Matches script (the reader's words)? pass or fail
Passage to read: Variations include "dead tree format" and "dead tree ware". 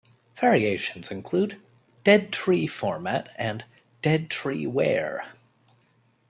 pass